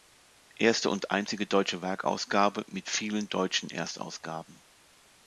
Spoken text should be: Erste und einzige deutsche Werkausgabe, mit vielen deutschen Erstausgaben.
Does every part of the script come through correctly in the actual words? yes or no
yes